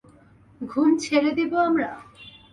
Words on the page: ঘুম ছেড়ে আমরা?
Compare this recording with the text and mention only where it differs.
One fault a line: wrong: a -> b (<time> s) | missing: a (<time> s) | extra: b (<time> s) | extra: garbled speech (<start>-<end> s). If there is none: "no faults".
extra: দিব (1.4 s)